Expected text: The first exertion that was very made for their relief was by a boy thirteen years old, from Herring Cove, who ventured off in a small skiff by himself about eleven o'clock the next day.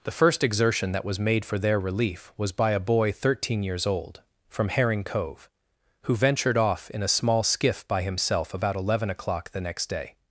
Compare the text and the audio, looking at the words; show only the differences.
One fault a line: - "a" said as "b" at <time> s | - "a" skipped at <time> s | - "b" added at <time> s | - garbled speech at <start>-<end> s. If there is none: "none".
- "very" skipped at 1.2 s